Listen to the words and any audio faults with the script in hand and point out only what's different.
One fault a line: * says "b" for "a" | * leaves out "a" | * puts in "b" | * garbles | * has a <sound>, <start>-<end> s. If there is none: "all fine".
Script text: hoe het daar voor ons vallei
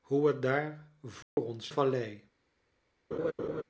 * has a dropout, 1.2-1.4 s
* has a laugh, 3.1-3.6 s